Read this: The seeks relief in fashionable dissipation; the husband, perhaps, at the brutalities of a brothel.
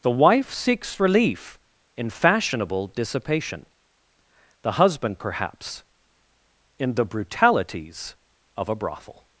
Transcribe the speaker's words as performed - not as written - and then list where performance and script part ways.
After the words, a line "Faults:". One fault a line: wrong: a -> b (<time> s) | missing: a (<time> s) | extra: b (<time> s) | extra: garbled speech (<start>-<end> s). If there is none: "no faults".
The wife seeks relief in fashionable dissipation; the husband, perhaps, in the brutalities of a brothel.
Faults:
extra: wife (0.1 s)
wrong: at -> in (6.8 s)